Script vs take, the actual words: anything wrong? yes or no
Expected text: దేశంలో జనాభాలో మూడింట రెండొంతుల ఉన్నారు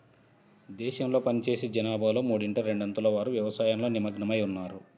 yes